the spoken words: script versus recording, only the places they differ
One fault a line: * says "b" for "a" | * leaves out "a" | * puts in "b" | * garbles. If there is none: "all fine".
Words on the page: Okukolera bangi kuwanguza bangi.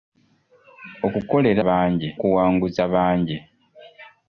all fine